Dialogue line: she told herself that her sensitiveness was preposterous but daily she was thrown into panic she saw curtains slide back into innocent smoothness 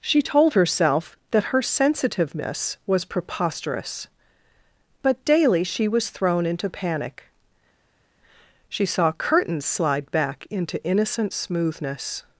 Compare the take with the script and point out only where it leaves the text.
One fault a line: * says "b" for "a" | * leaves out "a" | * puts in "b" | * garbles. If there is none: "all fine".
all fine